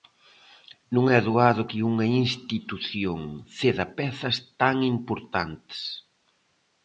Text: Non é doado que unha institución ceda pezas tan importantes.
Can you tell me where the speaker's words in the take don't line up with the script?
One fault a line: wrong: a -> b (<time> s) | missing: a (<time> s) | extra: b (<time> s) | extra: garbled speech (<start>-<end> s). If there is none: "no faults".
no faults